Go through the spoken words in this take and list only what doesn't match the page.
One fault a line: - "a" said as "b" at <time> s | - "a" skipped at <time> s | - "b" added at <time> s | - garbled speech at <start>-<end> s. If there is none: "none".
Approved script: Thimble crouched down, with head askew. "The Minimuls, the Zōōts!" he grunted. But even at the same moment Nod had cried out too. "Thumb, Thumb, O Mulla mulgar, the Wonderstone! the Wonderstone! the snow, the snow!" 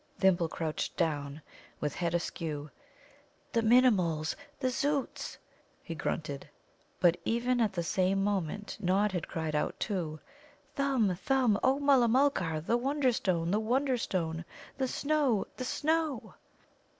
none